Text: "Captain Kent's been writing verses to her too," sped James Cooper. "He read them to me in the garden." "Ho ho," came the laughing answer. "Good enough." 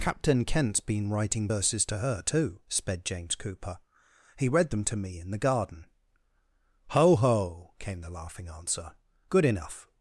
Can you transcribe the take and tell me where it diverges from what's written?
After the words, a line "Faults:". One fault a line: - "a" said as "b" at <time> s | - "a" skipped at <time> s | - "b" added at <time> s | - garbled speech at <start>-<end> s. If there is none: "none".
"Captain Kent's been writing verses to her too," sped James Cooper. "He read them to me in the garden." "Ho ho," came the laughing answer. "Good enough."
Faults:
none